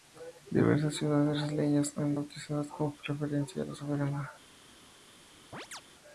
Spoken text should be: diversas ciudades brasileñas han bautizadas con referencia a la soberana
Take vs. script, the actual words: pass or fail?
pass